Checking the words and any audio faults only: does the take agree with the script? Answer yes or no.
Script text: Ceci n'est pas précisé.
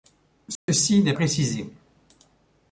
no